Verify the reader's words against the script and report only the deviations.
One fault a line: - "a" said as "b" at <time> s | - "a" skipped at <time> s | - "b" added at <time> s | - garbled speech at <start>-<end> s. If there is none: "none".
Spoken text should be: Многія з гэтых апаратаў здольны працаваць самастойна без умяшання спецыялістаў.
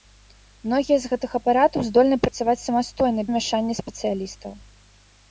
- "без" skipped at 3.2 s